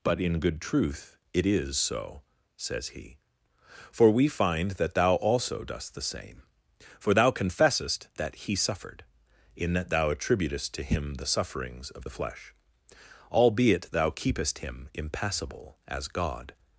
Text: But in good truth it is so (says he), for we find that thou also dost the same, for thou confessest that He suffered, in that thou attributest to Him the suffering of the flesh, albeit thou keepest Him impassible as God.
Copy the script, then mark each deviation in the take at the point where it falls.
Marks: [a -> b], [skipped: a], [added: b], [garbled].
But in good truth it is so (says he), for we find that thou also dost the same, for thou confessest that He suffered, in that thou attributest to Him the [suffering -> sufferings] of the flesh, albeit thou keepest Him impassible as God.